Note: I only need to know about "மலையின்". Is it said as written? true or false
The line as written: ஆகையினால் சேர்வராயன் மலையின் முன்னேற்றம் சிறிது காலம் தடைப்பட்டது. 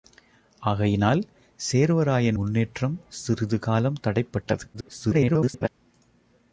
false